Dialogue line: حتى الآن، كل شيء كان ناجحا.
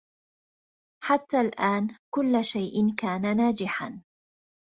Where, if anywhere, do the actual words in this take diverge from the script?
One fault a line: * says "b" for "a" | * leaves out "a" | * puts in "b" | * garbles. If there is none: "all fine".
all fine